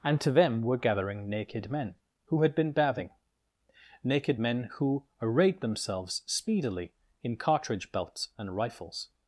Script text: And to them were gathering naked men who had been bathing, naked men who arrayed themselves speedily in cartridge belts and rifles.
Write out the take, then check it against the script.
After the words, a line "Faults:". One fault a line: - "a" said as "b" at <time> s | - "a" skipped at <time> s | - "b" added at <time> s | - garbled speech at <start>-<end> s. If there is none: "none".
And to them were gathering naked men who had been bathing, naked men who arrayed themselves speedily in cartridge belts and rifles.
Faults:
none